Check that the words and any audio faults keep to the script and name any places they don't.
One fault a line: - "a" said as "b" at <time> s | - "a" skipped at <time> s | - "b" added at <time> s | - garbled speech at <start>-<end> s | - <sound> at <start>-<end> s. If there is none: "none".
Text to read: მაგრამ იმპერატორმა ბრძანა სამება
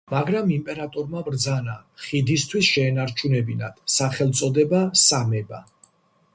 - "ხიდისთვის შეენარჩუნებინათ სახელწოდება" added at 2.1 s